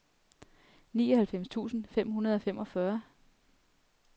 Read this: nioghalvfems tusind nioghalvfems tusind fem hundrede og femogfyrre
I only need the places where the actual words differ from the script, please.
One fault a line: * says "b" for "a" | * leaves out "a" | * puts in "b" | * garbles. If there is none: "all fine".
* leaves out "nioghalvfems tusind"